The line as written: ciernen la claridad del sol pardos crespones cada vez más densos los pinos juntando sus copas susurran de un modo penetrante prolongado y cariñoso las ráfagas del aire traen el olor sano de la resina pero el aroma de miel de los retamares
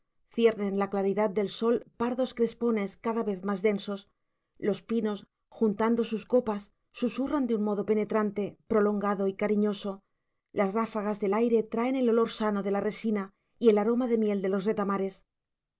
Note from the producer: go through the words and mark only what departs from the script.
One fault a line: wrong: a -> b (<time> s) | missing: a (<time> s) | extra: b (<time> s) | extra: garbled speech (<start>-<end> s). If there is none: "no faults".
wrong: pero -> y (13.6 s)